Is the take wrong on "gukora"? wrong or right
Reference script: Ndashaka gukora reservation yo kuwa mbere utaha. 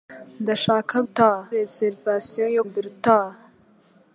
wrong